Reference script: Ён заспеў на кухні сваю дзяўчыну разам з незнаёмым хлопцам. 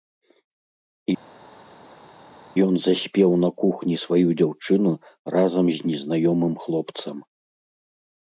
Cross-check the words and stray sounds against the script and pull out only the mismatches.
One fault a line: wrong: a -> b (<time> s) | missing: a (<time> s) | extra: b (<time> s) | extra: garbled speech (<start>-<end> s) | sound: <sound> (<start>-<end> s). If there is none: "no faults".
no faults